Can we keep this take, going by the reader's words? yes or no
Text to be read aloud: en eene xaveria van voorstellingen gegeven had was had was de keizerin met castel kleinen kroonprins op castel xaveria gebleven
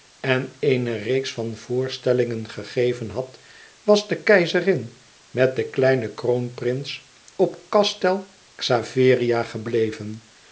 no